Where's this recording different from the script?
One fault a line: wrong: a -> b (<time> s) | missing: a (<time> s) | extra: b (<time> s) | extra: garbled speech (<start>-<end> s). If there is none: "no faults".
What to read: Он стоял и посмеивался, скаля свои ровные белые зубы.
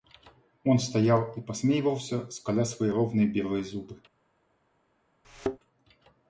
no faults